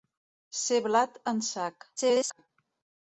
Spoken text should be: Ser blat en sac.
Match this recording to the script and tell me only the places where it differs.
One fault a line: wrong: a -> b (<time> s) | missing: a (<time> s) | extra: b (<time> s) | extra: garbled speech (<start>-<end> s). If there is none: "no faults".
extra: garbled speech (2.0-2.5 s)